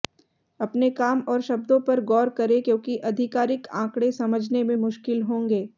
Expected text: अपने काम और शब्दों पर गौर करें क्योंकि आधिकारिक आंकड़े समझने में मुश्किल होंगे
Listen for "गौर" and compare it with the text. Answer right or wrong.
right